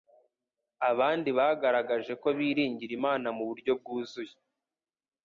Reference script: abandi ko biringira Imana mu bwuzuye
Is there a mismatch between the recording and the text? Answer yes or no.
yes